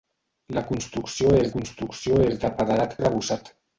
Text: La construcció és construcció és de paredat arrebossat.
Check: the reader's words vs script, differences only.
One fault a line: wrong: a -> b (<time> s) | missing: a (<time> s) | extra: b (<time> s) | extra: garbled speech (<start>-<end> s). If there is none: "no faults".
no faults